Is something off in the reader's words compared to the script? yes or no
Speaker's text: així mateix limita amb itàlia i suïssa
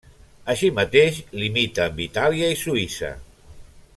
no